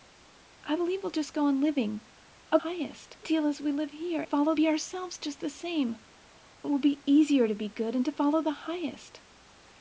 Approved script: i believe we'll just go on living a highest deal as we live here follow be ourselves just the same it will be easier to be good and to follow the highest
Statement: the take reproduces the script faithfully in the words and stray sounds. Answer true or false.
true